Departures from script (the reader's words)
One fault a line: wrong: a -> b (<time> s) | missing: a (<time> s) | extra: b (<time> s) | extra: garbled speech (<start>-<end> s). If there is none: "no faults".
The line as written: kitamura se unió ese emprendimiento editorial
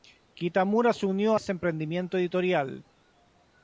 no faults